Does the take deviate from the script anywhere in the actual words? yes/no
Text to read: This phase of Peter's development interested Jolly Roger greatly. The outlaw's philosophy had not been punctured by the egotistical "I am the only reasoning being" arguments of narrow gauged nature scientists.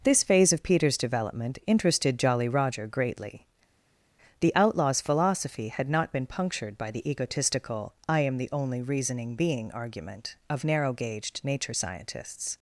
yes